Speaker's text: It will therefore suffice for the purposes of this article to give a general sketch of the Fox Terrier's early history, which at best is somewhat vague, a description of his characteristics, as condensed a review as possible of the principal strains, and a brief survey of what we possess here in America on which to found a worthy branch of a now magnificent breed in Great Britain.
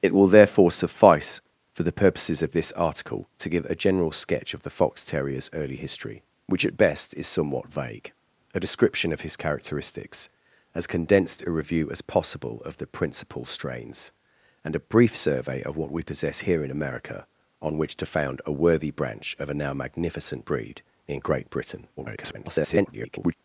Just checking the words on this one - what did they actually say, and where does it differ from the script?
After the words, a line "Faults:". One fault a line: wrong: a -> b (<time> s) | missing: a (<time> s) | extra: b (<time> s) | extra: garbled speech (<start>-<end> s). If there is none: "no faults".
It will therefore suffice for the purposes of this article to give a general sketch of the Fox Terrier's early history, which at best is somewhat vague, a description of his characteristics, as condensed a review as possible of the principal strains, and a brief survey of what we possess here in America on which to found a worthy branch of a now magnificent breed in Great Britain. [garbled]
Faults:
extra: garbled speech (22.0-23.3 s)